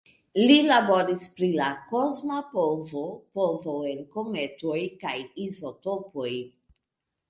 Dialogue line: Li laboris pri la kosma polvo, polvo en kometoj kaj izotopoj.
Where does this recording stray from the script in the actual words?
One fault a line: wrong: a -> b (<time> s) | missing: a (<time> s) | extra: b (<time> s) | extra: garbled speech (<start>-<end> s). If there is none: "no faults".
no faults